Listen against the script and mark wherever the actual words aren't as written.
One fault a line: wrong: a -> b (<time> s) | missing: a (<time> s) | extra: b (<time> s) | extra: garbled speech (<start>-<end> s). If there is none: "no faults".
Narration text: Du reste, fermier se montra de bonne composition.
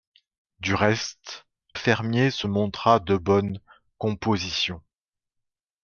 no faults